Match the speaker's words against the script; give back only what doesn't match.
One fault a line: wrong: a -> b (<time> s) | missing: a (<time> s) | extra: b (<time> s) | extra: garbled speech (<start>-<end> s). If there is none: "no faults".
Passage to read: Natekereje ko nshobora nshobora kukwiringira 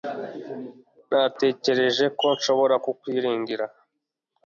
missing: nshobora (2.8 s)